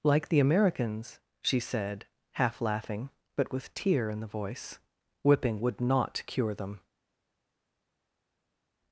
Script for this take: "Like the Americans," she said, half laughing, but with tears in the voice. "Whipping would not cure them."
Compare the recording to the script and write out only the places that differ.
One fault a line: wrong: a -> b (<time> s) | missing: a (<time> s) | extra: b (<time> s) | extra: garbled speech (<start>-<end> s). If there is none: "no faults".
wrong: tears -> tear (3.7 s)